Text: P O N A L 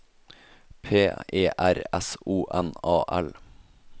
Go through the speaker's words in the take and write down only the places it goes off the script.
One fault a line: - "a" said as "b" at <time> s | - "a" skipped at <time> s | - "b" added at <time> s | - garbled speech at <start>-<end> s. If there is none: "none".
- "E R S" added at 1.3 s